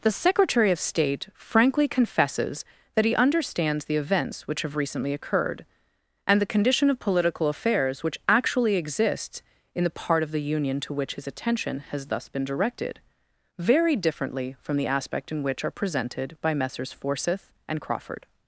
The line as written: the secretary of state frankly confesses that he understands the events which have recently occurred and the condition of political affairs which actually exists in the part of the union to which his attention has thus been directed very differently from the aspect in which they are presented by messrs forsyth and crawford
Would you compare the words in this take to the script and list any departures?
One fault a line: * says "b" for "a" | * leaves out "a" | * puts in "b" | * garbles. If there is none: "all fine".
* leaves out "they"